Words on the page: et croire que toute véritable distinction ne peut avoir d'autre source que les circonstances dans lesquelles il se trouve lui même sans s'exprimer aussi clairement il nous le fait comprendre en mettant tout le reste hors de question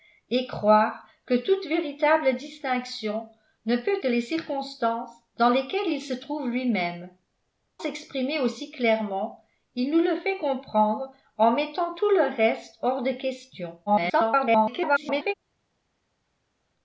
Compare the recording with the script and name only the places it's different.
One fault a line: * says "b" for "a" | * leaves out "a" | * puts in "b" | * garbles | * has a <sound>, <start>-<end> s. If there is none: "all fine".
* leaves out "avoir d'autre source"
* leaves out "sans"
* garbles